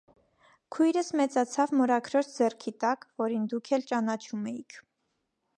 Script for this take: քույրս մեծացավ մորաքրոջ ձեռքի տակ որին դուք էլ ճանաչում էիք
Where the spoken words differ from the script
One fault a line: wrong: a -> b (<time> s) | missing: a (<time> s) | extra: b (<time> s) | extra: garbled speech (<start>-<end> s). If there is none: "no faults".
no faults